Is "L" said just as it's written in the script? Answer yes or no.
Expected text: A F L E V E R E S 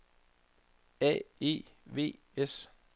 no